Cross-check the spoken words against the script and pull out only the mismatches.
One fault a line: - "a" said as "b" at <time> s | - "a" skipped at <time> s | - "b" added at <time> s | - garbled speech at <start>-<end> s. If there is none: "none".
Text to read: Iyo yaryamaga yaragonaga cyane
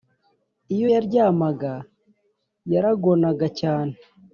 none